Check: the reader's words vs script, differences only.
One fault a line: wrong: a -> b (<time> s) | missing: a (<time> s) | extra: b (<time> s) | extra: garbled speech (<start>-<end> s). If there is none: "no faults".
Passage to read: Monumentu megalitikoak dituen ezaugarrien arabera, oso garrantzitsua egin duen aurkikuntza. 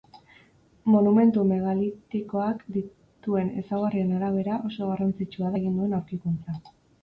no faults